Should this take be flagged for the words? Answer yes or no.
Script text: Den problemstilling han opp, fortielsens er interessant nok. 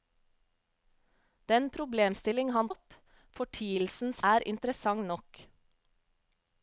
no